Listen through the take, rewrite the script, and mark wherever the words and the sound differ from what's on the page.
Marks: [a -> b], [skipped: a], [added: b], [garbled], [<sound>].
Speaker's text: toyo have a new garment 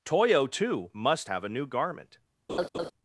toyo [added: too must] have a new garment [laugh]